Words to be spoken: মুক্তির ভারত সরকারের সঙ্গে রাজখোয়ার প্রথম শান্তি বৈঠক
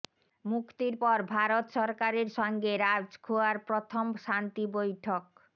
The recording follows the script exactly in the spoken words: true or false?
false